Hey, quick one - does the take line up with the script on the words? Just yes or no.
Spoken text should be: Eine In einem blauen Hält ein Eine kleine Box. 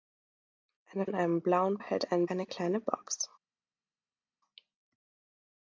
yes